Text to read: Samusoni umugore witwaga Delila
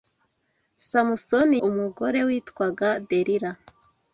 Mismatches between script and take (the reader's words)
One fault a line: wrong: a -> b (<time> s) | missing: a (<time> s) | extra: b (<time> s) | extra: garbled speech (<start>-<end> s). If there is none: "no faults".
no faults